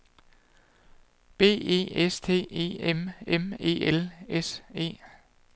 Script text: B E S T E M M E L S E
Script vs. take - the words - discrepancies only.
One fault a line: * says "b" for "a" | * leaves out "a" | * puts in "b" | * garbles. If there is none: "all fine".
all fine